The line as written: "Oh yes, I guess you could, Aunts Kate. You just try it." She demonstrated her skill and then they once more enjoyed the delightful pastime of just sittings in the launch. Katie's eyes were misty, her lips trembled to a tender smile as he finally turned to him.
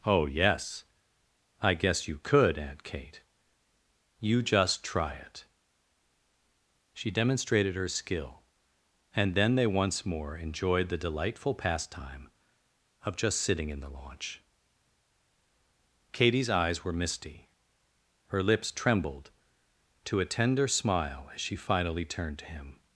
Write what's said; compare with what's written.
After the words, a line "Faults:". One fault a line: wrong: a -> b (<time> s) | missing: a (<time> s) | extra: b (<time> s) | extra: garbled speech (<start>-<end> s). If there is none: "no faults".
"Oh yes, I guess you could, Aunt Kate. You just try it." She demonstrated her skill and then they once more enjoyed the delightful pastime of just sitting in the launch. Katie's eyes were misty, her lips trembled to a tender smile as she finally turned to him.
Faults:
wrong: Aunts -> Aunt (2.6 s)
wrong: sittings -> sitting (13.4 s)
wrong: he -> she (21.4 s)